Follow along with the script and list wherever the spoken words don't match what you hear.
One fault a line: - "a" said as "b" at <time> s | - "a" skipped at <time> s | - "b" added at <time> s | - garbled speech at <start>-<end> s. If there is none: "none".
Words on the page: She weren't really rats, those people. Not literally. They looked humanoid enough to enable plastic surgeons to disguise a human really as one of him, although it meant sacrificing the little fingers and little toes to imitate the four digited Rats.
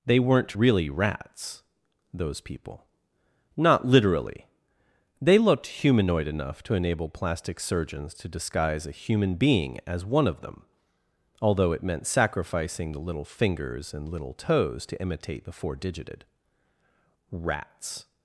- "She" said as "They" at 0.0 s
- "really" said as "being" at 9.3 s
- "him" said as "them" at 10.4 s